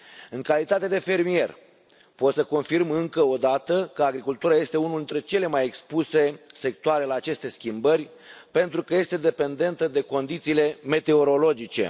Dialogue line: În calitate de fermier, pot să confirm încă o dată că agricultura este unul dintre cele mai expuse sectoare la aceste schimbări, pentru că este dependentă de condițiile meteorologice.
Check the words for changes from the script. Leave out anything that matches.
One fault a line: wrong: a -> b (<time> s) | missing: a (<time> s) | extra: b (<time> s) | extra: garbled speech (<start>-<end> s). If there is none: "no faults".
no faults